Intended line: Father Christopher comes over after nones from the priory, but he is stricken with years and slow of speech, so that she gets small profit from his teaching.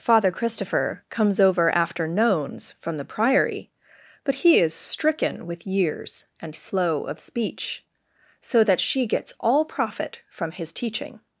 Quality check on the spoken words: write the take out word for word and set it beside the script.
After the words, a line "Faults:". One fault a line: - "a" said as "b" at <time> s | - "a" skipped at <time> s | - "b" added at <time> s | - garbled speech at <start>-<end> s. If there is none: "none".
Father Christopher comes over after nones from the priory, but he is stricken with years and slow of speech, so that she gets all profit from his teaching.
Faults:
- "small" said as "all" at 9.4 s